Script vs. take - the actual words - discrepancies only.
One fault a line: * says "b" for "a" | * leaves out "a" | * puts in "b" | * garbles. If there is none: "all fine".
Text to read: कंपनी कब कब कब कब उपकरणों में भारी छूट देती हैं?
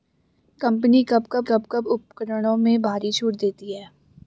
all fine